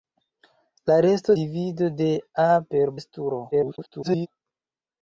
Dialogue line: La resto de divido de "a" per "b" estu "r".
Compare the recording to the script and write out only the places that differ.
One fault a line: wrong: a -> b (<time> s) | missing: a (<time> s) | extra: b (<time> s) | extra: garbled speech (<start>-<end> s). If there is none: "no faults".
missing: de (1.4 s)
missing: b (2.9 s)
extra: garbled speech (3.5-4.3 s)